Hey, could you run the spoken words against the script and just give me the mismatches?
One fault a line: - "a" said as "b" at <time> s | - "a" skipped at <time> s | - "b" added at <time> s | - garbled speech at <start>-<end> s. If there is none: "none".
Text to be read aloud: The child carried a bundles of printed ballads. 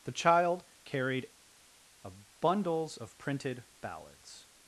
none